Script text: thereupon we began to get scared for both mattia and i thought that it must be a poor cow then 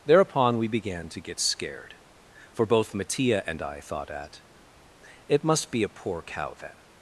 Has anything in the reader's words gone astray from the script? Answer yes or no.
yes